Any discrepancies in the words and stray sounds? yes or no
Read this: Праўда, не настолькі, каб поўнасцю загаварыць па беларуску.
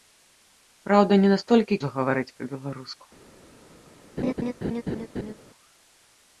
yes